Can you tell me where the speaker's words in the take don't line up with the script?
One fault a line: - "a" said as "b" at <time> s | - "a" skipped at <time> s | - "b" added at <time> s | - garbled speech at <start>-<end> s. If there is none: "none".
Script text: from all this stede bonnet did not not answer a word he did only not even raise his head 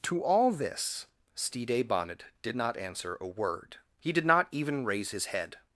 - "from" said as "to" at 0.0 s
- "not" skipped at 2.8 s
- "only" skipped at 4.3 s